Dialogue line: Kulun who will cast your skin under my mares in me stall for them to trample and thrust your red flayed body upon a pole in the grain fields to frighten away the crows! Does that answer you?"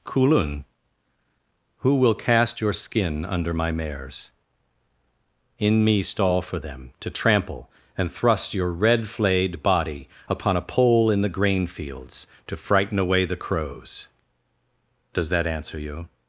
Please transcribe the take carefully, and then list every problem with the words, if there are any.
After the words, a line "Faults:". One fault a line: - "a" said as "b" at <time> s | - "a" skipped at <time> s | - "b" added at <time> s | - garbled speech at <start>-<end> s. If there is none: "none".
Kulun who will cast your skin under my mares in me stall for them to trample and thrust your red flayed body upon a pole in the grain fields to frighten away the crows! Does that answer you?"
Faults:
none